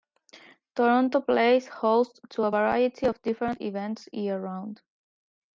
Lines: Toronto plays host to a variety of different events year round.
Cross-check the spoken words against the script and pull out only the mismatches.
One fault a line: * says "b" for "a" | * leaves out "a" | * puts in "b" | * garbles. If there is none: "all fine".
all fine